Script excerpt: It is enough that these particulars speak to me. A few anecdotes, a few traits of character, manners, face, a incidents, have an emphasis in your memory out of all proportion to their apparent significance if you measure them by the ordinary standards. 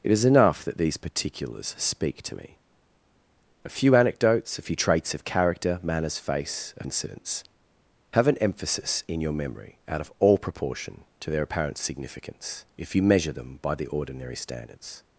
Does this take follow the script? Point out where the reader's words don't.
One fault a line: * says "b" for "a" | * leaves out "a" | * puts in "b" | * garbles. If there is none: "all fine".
all fine